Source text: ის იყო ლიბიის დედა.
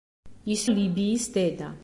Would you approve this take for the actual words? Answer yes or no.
no